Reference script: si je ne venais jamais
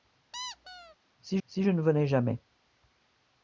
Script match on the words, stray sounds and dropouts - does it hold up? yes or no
no